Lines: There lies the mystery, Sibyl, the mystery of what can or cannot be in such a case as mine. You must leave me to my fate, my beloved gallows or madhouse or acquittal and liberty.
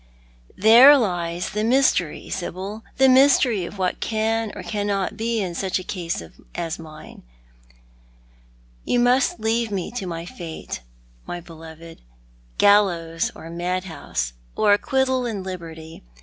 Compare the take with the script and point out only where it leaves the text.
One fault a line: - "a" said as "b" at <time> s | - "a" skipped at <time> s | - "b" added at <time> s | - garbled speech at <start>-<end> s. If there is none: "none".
none